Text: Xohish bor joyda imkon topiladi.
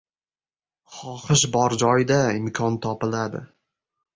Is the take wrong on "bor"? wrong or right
right